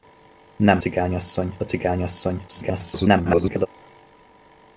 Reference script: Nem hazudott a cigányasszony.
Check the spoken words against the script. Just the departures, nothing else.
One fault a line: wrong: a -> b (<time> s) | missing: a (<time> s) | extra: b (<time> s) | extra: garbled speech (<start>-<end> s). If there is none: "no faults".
wrong: hazudott -> cigányasszony (0.8 s)
extra: garbled speech (2.5-3.7 s)